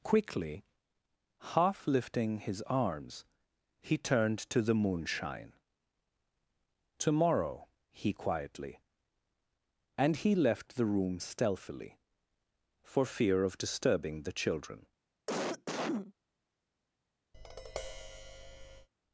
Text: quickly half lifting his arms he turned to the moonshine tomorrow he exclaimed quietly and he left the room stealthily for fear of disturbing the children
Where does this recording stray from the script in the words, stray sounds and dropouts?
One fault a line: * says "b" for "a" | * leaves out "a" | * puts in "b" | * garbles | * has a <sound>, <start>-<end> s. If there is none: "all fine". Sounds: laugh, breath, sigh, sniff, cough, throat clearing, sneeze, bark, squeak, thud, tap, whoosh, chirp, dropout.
* leaves out "exclaimed"
* has a cough, 15.3-16.1 s
* has a tap, 17.3-18.9 s